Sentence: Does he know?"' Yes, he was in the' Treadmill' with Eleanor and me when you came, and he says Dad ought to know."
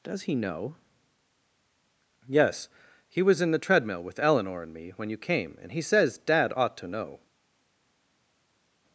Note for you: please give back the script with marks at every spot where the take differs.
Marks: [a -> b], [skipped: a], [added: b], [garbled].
Does he know?"' Yes, he was in the' Treadmill' with Eleanor and me when you came, and he says Dad ought to know."